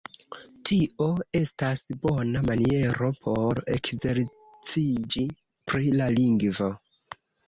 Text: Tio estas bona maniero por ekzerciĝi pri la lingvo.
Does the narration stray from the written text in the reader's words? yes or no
no